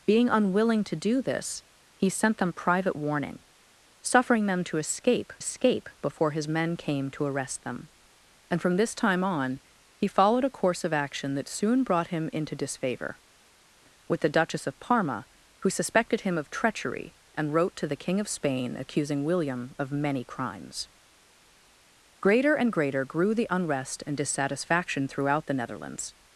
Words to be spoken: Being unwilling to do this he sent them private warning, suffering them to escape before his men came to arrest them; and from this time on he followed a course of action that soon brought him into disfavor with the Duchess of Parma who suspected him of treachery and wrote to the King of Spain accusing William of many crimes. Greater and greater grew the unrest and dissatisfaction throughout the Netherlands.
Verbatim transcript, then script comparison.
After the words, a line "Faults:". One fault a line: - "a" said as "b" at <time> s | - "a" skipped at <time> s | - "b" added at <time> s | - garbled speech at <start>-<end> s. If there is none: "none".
Being unwilling to do this he sent them private warning, suffering them to escape escape before his men came to arrest them; and from this time on he followed a course of action that soon brought him into disfavor with the Duchess of Parma who suspected him of treachery and wrote to the King of Spain accusing William of many crimes. Greater and greater grew the unrest and dissatisfaction throughout the Netherlands.
Faults:
- "escape" added at 5.4 s